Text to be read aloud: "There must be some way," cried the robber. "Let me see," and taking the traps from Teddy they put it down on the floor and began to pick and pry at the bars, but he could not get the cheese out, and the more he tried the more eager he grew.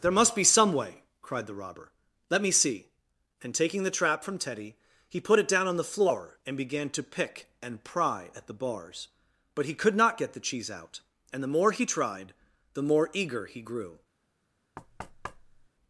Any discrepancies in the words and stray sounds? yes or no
yes